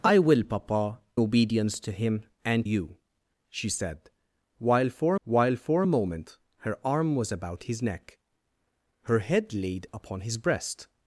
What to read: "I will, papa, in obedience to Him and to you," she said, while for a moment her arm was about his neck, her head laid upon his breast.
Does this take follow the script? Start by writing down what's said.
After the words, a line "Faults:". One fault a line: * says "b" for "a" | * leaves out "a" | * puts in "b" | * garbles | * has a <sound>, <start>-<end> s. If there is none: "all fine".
"I will, papa, obedience to Him and you," she said, while for while for a moment her arm was about his neck, her head laid upon his breast.
Faults:
* leaves out "in"
* leaves out "to"
* puts in "while for"